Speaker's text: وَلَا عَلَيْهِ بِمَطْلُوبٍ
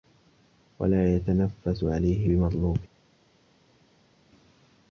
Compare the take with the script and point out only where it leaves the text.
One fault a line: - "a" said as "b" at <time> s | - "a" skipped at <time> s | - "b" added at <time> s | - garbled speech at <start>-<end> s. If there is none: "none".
- "يَتَنَفَّسُ" added at 1.1 s